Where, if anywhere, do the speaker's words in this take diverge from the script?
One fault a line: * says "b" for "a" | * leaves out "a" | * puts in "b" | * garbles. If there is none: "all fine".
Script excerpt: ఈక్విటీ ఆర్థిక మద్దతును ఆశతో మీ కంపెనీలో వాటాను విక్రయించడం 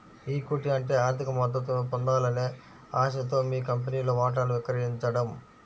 * puts in "అంటే"
* puts in "పొందాలనే"